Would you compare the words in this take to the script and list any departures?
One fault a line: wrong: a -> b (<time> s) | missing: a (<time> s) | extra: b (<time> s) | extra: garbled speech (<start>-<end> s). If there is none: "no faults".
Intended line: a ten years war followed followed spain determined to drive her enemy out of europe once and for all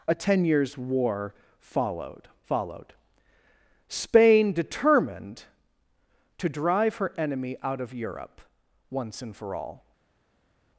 no faults